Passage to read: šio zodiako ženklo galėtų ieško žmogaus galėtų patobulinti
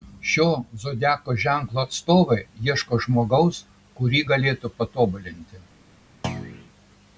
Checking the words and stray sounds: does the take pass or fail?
fail